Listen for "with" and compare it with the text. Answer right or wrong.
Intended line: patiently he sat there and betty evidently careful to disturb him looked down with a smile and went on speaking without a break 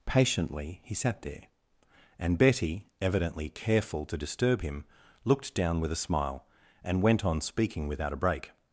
right